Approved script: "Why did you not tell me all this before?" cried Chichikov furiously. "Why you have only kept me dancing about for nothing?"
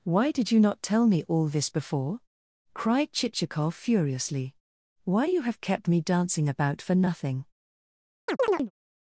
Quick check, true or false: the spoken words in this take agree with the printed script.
false